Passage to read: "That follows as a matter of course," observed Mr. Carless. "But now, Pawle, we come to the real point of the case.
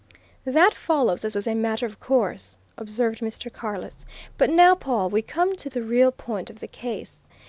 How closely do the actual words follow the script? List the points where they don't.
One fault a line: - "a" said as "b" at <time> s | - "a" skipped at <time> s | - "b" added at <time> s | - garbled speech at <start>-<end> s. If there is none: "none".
- "as" added at 1.3 s